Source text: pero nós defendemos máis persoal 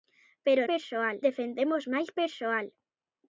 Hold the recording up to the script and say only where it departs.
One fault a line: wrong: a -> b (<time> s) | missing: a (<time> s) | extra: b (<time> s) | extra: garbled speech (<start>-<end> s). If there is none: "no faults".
wrong: nós -> persoal (0.7 s)